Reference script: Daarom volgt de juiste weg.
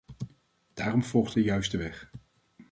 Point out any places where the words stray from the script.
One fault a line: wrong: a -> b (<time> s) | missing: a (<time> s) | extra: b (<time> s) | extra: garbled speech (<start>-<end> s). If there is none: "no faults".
no faults